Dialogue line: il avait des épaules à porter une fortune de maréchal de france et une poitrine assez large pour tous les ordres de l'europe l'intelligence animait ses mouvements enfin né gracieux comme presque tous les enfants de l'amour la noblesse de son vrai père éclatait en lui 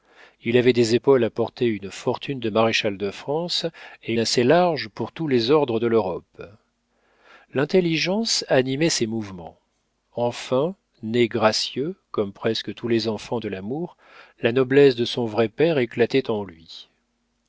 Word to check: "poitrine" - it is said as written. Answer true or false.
false